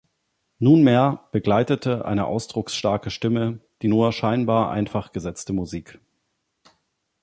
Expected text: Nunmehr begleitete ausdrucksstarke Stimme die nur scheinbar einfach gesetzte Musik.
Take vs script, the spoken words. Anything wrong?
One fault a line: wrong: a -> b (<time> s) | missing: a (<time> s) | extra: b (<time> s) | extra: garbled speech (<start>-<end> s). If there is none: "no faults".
extra: eine (2.0 s)